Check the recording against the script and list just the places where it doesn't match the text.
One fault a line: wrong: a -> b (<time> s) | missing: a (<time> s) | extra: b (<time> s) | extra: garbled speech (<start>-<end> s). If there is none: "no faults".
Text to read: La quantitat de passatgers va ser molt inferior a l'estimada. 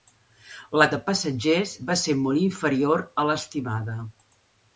missing: quantitat (0.8 s)